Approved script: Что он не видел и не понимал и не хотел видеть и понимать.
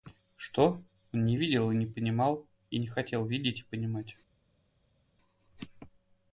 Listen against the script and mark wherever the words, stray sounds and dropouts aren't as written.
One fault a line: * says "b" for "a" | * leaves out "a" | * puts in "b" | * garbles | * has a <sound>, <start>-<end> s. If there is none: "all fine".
all fine